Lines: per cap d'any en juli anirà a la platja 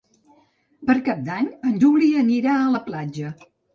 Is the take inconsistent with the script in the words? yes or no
no